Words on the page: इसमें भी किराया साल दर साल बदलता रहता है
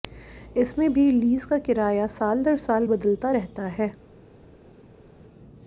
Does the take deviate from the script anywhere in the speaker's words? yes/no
yes